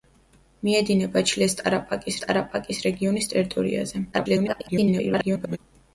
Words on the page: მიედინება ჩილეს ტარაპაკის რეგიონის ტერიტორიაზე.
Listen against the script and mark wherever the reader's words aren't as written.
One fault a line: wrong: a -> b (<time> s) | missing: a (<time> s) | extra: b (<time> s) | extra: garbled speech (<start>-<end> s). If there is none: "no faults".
extra: ტარაპაკის (2.2 s)
extra: garbled speech (4.1-5.6 s)